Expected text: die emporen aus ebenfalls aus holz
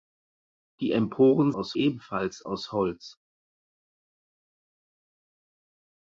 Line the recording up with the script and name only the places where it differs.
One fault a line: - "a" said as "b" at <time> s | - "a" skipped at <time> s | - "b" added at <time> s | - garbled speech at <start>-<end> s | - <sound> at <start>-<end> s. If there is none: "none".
none